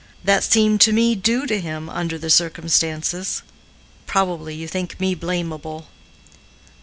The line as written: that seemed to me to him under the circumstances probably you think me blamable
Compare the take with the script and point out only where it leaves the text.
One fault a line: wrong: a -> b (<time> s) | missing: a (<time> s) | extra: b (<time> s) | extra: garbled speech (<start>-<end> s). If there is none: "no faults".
extra: due (1.1 s)